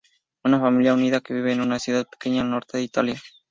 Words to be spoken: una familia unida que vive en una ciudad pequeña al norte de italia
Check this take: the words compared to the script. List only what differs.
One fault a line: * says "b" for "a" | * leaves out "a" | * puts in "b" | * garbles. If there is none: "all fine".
all fine